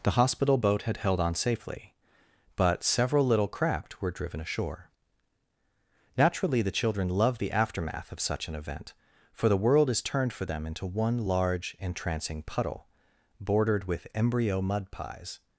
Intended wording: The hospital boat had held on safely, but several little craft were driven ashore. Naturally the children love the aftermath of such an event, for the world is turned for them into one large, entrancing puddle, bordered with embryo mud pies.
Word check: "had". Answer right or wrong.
right